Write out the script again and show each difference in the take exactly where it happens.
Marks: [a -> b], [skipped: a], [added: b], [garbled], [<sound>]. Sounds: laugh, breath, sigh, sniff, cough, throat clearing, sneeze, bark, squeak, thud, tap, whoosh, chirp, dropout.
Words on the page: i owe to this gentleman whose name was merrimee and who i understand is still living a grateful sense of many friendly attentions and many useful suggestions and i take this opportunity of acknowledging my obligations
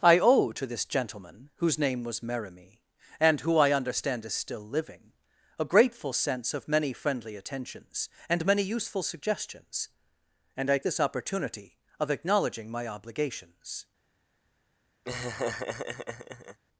i owe to this gentleman whose name was merrimee and who i understand is still living a grateful sense of many friendly attentions and many useful suggestions and i [skipped: take] this opportunity of acknowledging my obligations [laugh]